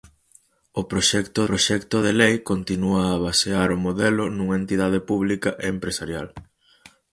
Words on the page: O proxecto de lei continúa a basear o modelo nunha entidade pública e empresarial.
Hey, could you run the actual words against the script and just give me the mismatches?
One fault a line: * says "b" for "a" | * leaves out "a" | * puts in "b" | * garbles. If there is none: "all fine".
* puts in "proxecto"